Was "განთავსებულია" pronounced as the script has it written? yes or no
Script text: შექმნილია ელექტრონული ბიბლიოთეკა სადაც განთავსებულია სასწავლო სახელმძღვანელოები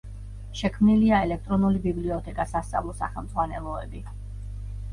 no